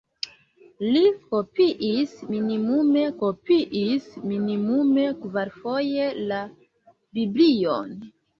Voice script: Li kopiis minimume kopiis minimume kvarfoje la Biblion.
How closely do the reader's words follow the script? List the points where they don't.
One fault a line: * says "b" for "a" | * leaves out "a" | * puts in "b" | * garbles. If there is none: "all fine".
all fine